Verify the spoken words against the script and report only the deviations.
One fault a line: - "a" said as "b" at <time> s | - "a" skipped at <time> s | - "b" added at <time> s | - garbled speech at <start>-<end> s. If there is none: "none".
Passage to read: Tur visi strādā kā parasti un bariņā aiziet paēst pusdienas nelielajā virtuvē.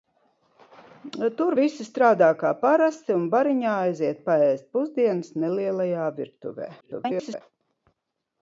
- garbled speech at 6.8-7.4 s